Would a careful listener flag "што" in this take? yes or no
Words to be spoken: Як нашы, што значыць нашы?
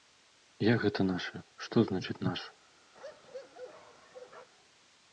no